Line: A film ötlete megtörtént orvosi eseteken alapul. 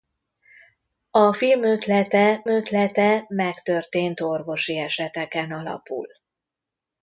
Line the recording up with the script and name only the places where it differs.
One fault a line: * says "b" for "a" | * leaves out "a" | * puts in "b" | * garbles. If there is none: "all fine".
* puts in "ötlete"